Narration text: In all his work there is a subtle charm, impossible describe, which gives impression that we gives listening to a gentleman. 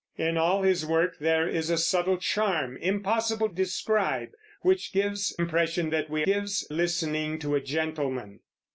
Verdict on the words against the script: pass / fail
pass